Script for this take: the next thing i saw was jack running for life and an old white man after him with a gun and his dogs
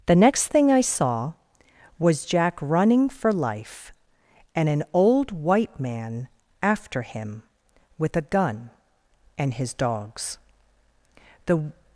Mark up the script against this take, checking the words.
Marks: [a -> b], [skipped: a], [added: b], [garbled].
the next thing i saw was jack running for life and an old white man after him with a gun and his dogs [added: the]